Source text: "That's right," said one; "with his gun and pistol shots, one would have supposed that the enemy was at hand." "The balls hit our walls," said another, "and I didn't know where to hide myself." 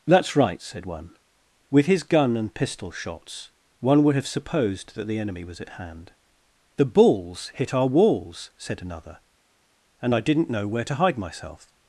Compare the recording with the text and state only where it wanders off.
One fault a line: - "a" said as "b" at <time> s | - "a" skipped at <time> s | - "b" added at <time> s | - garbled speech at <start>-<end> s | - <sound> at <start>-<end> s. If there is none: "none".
none